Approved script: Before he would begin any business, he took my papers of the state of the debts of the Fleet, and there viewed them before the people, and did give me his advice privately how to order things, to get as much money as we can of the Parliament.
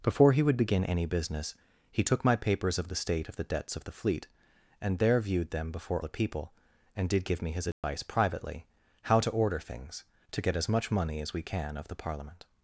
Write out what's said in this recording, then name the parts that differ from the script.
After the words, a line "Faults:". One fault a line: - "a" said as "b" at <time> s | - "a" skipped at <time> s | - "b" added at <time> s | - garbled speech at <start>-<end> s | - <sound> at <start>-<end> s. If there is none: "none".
Before he would begin any business, he took my papers of the state of the debts of the Fleet, and there viewed them before the people, and did give me his advice privately how to order things, to get as much money as we can of the Parliament.
Faults:
- dropout at 7.7-7.8 s